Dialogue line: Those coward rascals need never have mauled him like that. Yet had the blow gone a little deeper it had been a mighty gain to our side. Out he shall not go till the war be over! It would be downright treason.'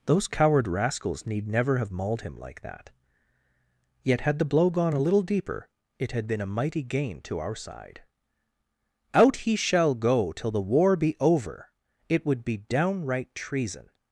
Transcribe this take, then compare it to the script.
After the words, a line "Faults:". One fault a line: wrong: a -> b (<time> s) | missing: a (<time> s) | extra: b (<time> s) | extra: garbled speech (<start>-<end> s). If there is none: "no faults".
Those coward rascals need never have mauled him like that. Yet had the blow gone a little deeper it had been a mighty gain to our side. Out he shall go till the war be over! It would be downright treason.'
Faults:
missing: not (9.9 s)